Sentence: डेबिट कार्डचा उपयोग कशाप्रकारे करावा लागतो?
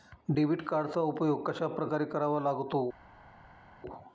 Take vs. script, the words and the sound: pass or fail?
pass